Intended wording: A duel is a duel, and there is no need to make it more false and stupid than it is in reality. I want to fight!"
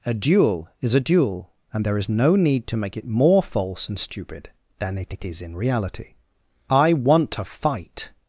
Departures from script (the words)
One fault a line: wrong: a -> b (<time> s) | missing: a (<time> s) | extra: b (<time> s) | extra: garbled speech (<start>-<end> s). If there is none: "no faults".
extra: it (5.1 s)